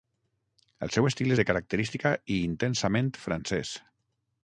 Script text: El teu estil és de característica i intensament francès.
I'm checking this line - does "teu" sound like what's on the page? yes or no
no